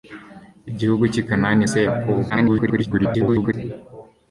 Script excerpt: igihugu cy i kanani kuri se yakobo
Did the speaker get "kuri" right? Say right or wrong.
wrong